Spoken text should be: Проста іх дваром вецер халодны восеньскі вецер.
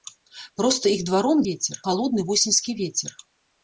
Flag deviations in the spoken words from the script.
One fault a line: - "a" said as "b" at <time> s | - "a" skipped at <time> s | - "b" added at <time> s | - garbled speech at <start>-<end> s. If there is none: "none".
none